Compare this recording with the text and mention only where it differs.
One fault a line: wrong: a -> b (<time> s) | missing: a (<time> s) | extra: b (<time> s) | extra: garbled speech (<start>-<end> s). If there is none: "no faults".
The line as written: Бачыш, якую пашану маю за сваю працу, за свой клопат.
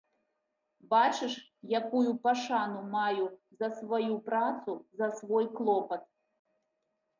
no faults